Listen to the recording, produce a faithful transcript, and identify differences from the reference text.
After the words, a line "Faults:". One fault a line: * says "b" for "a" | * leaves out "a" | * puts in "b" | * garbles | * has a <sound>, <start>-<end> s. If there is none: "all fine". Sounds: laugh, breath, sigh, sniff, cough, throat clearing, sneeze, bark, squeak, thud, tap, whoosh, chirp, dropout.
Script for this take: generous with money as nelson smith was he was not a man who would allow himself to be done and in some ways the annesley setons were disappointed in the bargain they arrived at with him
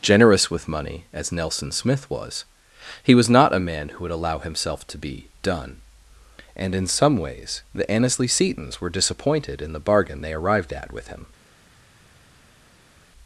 generous with money as nelson smith was he was not a man who would allow himself to be done and in some ways the annesley setons were disappointed in the bargain they arrived at with him
Faults:
all fine